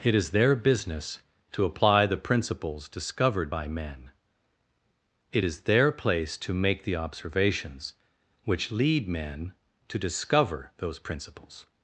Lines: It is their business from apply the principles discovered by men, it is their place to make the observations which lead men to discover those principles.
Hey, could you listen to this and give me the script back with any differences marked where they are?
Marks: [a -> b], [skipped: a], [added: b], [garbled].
It is their business [from -> to] apply the principles discovered by men, it is their place to make the observations which lead men to discover those principles.